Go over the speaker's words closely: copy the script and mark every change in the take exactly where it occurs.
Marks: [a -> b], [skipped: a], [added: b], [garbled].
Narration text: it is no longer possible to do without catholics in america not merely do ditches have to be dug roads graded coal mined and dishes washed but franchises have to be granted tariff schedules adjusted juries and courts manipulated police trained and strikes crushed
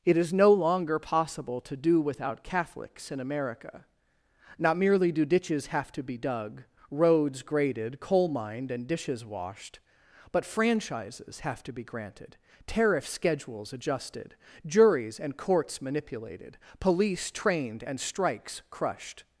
it is no longer possible to do without catholics in america not merely do ditches have to be dug roads graded coal mined and dishes washed but franchises have to be granted tariff schedules adjusted juries and courts manipulated police trained and strikes crushed